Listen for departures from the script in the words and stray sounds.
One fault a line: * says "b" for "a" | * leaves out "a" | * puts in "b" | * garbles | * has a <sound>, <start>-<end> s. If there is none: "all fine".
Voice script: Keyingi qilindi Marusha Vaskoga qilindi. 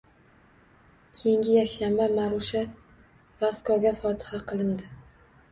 * says "yakshanba" for "qilindi"
* puts in "fotiha"